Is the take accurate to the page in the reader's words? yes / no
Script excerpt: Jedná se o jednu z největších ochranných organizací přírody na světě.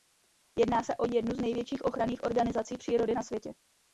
yes